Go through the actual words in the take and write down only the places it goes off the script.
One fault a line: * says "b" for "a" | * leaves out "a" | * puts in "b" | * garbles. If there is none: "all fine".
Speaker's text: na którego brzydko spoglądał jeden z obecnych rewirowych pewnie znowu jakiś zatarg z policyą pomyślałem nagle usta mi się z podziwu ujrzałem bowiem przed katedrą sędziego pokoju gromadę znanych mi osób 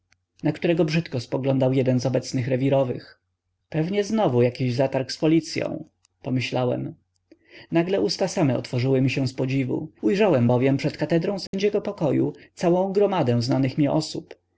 * puts in "same otworzyły"
* puts in "całą"